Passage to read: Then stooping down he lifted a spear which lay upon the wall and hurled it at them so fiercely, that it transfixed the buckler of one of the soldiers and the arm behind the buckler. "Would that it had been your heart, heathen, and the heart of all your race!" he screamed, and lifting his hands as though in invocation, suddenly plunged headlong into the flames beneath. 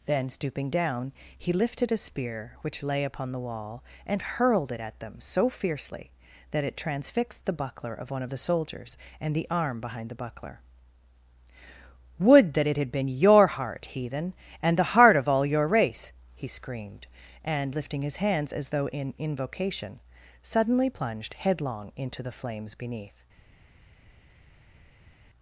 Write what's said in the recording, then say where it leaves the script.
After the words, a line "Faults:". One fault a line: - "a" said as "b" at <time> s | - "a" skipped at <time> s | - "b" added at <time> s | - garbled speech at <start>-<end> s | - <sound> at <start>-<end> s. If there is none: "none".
Then stooping down he lifted a spear which lay upon the wall and hurled it at them so fiercely, that it transfixed the buckler of one of the soldiers and the arm behind the buckler. "Would that it had been your heart, heathen, and the heart of all your race!" he screamed, and lifting his hands as though in invocation, suddenly plunged headlong into the flames beneath.
Faults:
none